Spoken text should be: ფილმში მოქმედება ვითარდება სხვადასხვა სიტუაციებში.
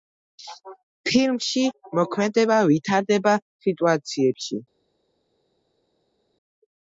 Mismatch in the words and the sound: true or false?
true